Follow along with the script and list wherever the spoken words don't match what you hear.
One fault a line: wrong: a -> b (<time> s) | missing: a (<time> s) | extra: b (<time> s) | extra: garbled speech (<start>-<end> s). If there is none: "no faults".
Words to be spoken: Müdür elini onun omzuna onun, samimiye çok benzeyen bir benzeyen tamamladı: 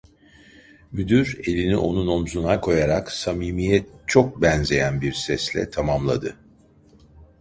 wrong: onun -> koyarak (2.6 s)
wrong: benzeyen -> sesle (5.1 s)